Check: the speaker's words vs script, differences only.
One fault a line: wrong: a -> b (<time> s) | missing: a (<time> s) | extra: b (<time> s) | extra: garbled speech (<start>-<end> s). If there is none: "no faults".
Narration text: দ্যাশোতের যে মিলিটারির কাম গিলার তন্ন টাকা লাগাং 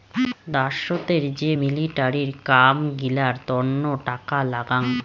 no faults